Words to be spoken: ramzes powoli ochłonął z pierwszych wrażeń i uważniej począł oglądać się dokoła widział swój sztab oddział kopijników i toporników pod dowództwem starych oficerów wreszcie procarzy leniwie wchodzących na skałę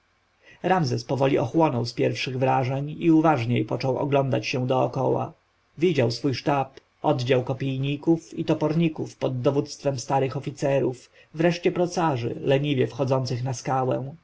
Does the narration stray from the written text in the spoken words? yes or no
no